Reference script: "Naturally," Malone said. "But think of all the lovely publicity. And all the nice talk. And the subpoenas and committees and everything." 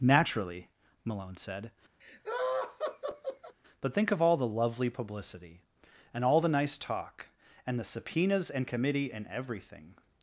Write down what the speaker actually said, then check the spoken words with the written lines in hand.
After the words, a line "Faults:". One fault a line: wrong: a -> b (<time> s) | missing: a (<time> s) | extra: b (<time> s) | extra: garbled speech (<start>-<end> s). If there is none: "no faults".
"Naturally," Malone said. "But think of all the lovely publicity. And all the nice talk. And the subpoenas and committee and everything."
Faults:
wrong: committees -> committee (8.7 s)